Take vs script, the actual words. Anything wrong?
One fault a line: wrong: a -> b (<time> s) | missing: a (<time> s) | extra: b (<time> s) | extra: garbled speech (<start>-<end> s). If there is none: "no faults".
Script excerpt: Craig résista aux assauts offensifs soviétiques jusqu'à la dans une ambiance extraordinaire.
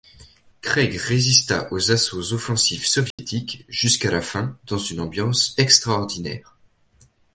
extra: fin (4.2 s)